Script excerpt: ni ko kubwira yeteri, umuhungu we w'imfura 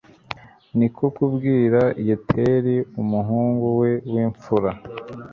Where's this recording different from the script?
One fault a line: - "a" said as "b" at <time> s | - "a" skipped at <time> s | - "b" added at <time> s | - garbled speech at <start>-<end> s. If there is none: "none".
none